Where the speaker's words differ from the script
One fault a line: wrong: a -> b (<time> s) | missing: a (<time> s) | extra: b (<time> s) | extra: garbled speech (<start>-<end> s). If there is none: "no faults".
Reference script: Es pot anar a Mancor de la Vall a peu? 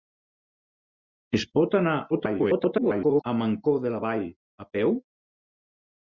extra: garbled speech (2.1-3.2 s)